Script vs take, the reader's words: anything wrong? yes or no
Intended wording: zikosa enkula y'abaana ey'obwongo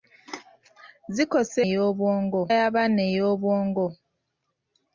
yes